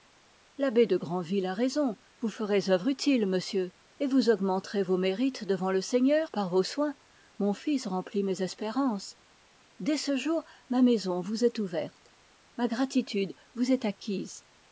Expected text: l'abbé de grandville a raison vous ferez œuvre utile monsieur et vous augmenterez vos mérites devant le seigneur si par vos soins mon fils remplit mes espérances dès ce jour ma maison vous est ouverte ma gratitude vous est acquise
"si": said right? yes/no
no